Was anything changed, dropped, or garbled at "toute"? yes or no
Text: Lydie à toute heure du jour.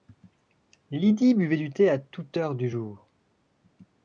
no